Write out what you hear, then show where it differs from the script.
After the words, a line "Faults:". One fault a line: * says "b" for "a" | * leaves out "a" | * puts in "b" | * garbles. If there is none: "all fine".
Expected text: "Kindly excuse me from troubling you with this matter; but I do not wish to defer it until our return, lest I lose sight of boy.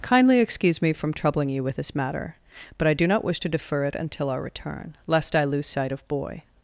"Kindly excuse me from troubling you with this matter; but I do not wish to defer it until our return, lest I lose sight of boy.
Faults:
all fine